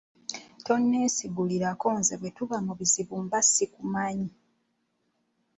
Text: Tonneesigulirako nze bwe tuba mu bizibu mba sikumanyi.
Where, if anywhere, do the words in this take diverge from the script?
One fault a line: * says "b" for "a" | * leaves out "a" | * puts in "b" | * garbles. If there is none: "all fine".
all fine